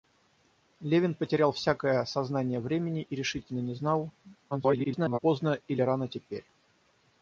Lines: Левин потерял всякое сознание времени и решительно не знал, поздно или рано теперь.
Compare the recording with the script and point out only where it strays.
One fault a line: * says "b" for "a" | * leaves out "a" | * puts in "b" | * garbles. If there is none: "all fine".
* garbles